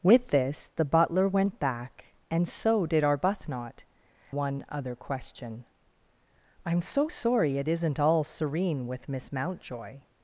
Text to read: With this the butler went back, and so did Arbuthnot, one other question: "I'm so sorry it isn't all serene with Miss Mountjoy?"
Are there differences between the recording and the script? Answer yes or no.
no